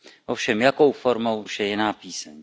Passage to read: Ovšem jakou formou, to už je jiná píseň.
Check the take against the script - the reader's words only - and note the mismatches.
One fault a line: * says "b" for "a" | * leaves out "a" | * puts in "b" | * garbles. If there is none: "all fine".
* leaves out "to"